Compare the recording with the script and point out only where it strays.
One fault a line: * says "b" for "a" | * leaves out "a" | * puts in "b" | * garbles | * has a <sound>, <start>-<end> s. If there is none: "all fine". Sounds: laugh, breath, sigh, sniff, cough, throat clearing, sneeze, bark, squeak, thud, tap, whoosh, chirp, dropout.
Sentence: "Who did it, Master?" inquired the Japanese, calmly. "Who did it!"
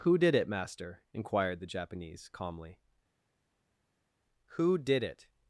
all fine